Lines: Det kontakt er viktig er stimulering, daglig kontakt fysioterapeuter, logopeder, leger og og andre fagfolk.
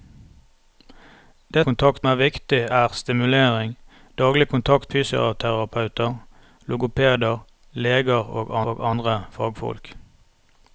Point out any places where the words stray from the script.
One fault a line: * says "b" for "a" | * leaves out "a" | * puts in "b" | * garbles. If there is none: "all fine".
all fine